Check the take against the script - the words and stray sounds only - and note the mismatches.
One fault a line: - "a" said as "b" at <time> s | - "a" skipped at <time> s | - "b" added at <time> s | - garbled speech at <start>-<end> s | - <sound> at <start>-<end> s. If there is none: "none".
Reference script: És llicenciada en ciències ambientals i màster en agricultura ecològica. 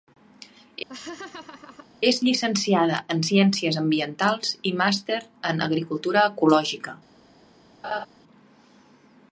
- laugh at 0.9-1.9 s
- laugh at 7.8-8.1 s